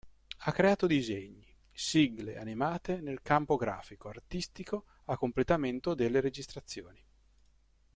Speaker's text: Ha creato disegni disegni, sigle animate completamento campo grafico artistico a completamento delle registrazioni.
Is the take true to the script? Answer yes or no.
no